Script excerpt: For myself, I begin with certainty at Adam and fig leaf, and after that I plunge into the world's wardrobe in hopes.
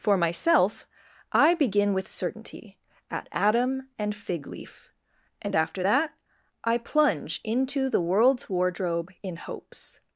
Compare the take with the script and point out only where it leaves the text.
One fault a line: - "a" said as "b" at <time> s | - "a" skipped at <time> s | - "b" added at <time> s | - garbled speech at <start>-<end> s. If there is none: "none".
none